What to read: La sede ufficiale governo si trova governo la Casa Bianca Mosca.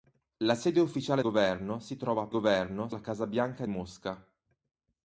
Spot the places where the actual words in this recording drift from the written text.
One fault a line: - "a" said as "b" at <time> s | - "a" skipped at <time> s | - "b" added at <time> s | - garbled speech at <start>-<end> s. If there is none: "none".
none